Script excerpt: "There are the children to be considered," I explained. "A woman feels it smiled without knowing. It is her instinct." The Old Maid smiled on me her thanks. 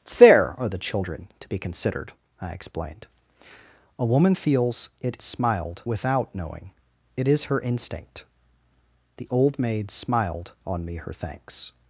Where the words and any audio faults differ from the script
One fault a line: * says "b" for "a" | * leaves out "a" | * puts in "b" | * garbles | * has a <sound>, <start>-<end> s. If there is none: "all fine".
all fine